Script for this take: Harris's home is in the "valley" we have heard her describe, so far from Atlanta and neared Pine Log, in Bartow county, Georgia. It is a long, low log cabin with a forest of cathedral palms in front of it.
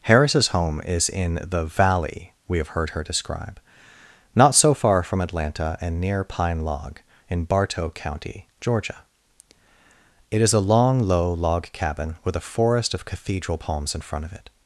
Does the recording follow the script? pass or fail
fail